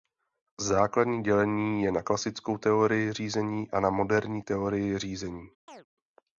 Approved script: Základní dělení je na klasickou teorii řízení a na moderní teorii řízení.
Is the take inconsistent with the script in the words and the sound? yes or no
yes